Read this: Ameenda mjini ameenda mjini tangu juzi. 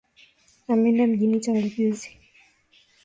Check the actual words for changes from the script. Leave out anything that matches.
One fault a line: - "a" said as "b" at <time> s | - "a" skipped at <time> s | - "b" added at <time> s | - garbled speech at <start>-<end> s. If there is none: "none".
- "ameenda mjini" skipped at 1.4 s